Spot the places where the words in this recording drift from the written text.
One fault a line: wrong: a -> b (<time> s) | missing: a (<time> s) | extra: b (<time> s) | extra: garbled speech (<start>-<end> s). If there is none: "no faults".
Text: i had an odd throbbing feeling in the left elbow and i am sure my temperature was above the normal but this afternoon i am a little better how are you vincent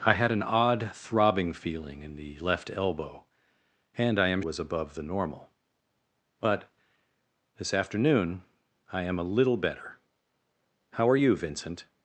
missing: sure my temperature (4.4 s)